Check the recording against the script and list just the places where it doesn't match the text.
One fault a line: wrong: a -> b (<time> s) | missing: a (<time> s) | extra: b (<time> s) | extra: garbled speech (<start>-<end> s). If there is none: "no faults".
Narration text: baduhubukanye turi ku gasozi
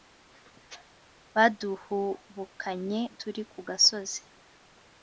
no faults